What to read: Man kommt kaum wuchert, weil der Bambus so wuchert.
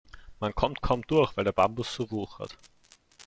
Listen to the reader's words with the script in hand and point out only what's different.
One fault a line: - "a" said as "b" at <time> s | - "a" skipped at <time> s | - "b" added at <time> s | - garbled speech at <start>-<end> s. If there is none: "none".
- "wuchert" said as "durch" at 1.1 s